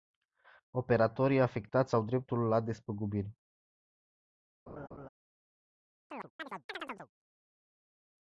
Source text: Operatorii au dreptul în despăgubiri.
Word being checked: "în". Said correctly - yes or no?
no